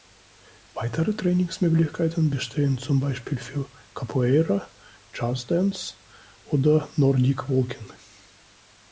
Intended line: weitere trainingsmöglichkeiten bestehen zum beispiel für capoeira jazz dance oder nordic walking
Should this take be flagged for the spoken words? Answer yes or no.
no